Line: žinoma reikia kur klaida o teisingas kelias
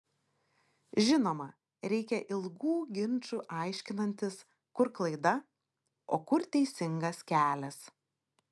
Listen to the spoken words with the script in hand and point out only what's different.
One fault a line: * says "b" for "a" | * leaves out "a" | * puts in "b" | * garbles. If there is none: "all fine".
* puts in "ilgų ginčų aiškinantis"
* puts in "kur"